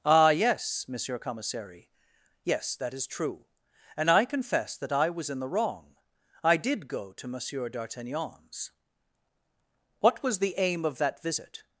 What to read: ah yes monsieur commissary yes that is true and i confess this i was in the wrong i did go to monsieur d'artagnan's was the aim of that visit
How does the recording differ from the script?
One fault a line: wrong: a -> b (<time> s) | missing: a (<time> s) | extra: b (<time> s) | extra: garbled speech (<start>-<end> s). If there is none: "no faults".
wrong: this -> that (4.8 s)
extra: what (10.0 s)